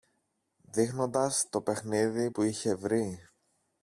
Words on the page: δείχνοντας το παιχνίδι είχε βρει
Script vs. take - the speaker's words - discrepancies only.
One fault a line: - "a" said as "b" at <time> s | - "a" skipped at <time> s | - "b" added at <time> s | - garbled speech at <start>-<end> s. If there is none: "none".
- "που" added at 2.3 s